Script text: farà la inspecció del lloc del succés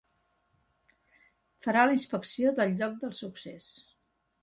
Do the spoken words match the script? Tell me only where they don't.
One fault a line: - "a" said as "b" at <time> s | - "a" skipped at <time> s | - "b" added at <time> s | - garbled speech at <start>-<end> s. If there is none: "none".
none